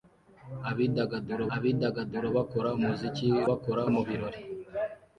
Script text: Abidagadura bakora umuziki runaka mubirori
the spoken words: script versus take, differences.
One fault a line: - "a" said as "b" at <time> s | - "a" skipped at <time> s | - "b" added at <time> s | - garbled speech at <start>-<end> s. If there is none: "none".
- "abidagadura" added at 1.5 s
- "runaka" said as "bakora" at 3.5 s